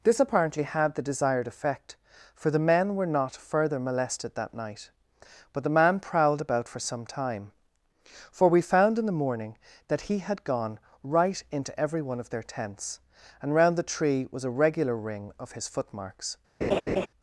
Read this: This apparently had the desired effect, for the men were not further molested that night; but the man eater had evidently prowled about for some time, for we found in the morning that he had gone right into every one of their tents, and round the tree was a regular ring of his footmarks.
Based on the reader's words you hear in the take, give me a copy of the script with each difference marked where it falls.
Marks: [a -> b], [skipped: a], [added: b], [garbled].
This apparently had the desired effect, for the men were not further molested that night; but the man [skipped: eater had evidently] prowled about for some time, for we found in the morning that he had gone right into every one of their tents, and round the tree was a regular ring of his footmarks.